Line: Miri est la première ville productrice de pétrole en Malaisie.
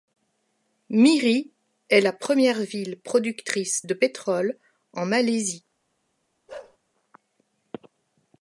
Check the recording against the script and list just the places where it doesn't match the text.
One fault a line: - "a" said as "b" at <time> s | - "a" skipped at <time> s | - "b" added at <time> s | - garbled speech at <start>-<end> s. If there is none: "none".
none